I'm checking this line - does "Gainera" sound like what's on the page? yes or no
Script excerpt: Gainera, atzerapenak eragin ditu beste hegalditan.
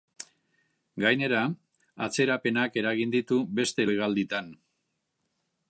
yes